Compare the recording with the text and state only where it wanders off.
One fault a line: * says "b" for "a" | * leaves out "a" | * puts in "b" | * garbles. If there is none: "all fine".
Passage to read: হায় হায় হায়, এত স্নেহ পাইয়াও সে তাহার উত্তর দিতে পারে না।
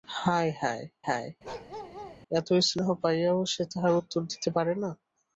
all fine